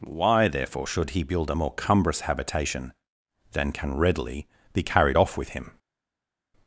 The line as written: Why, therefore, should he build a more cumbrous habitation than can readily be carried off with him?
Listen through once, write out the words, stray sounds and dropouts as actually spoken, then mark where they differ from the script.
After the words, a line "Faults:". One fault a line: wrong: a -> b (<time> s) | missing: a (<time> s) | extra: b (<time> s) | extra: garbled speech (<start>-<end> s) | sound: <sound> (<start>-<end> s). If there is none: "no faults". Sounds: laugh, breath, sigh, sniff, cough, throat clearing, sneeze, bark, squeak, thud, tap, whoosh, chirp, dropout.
Why, therefore, should he build a more cumbrous habitation than can readily be carried off with him?
Faults:
no faults